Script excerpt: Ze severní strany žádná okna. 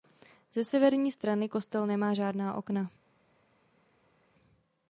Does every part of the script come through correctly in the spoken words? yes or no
no